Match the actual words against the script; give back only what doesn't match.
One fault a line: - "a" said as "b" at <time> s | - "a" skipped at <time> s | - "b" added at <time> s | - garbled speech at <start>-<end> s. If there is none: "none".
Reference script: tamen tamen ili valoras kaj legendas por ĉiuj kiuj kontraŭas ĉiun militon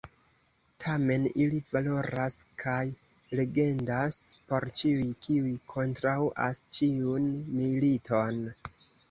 - "tamen" skipped at 1.2 s